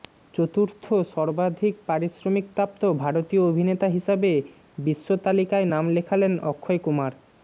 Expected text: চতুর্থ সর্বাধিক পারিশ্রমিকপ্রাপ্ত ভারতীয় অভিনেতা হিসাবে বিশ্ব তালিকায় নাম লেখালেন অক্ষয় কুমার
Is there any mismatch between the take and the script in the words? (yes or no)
no